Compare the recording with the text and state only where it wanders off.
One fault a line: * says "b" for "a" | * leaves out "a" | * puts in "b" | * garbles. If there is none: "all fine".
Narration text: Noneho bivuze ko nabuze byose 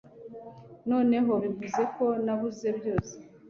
all fine